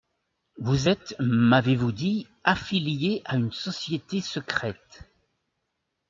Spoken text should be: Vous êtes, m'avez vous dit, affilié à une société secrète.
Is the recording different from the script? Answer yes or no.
no